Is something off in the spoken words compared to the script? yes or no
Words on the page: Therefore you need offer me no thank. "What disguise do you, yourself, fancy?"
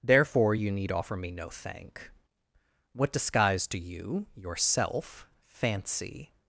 no